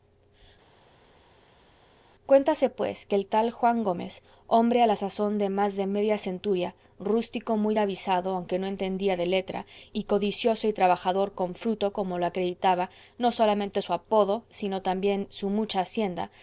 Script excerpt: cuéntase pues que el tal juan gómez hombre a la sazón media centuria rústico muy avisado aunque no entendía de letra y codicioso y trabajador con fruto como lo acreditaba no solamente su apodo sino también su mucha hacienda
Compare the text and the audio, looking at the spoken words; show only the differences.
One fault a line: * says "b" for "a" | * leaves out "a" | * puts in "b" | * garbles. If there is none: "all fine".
* puts in "de más de"